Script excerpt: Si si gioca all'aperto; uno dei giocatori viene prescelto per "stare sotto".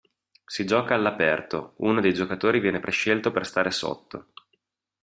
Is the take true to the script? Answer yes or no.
no